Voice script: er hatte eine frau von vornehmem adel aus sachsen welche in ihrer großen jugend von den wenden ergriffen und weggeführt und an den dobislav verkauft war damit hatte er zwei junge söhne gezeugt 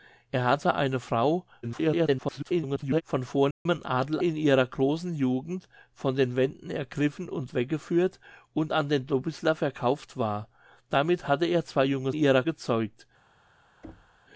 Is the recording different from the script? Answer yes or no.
yes